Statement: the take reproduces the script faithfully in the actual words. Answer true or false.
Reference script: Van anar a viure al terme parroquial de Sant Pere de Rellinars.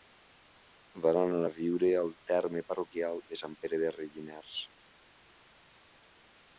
true